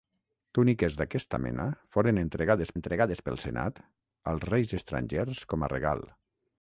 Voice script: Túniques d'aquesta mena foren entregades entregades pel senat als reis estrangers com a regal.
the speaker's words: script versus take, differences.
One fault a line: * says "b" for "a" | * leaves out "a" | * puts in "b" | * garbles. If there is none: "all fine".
all fine